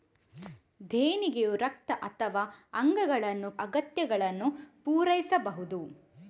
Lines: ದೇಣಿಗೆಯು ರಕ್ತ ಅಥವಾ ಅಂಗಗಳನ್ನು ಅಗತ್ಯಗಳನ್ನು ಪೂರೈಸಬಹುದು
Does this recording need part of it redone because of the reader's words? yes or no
no